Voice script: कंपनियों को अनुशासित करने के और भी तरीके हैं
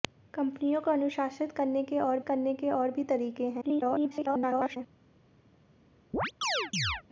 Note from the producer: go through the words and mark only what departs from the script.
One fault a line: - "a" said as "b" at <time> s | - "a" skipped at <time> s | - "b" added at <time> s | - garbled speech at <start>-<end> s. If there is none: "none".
- "करने के और" added at 2.2 s
- garbled speech at 3.6-4.8 s